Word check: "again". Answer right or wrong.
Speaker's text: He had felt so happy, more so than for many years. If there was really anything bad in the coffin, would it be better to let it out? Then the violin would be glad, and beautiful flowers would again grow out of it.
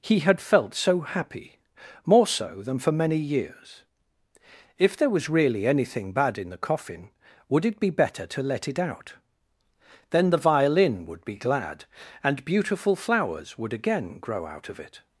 right